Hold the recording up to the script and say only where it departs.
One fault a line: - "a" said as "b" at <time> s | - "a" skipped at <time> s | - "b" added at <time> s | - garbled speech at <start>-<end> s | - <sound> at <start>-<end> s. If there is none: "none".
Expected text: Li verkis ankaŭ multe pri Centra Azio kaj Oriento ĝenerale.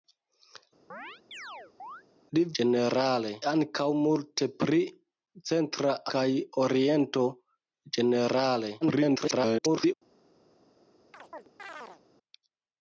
- chirp at 0.9-2.0 s
- "verkis" said as "ĝenerale" at 2.6 s
- "Azio" skipped at 5.9 s
- garbled speech at 8.8-9.9 s
- chirp at 11.1-12.0 s